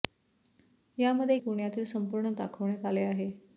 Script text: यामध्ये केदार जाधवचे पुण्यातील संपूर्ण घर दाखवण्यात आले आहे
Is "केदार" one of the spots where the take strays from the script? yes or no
yes